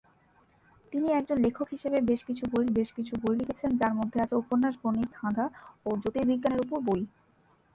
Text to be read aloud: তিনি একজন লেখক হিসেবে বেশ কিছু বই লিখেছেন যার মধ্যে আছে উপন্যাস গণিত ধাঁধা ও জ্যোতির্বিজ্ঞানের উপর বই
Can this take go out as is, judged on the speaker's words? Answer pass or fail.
fail